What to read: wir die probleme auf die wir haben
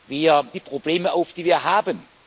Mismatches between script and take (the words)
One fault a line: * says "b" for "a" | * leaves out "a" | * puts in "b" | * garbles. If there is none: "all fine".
all fine